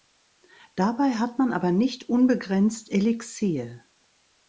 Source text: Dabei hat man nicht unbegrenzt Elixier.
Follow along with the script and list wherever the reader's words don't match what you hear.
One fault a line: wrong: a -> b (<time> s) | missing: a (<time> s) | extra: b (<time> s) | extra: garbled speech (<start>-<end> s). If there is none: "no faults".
extra: aber (1.5 s)